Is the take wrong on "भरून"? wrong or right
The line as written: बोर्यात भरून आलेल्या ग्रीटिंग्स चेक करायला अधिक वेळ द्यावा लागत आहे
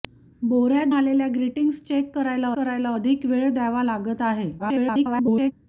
wrong